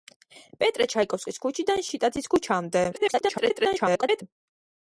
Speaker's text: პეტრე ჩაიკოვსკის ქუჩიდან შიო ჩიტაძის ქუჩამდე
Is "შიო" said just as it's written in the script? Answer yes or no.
no